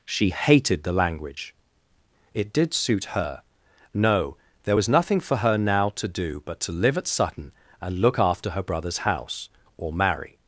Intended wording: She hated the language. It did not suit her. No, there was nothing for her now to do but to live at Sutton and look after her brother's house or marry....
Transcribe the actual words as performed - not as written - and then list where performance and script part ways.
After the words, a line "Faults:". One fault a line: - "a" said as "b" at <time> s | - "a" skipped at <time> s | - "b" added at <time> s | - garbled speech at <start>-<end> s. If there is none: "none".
She hated the language. It did suit her. No, there was nothing for her now to do but to live at Sutton and look after her brother's house or marry....
Faults:
- "not" skipped at 2.7 s